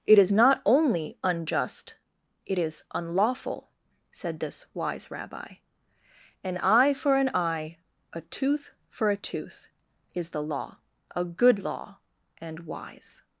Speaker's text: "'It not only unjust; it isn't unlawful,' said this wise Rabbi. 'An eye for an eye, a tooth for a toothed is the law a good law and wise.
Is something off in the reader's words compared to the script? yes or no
yes